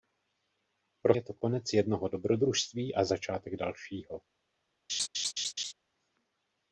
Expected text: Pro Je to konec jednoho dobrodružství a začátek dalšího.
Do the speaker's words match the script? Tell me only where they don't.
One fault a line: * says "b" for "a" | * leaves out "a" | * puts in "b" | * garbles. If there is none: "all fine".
all fine